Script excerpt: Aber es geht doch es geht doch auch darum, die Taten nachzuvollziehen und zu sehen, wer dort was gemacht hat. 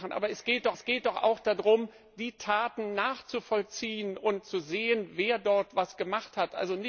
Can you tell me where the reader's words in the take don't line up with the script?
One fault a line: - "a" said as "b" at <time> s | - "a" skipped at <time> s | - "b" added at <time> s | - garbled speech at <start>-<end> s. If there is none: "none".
none